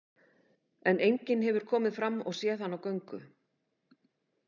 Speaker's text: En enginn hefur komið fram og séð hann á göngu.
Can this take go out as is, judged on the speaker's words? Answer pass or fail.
pass